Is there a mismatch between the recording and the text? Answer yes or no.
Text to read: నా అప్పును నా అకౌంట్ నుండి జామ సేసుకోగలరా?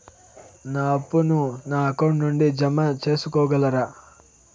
no